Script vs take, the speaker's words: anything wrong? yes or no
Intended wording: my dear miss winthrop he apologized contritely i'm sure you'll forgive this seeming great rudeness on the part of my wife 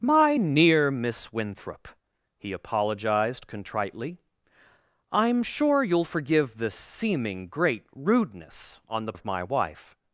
yes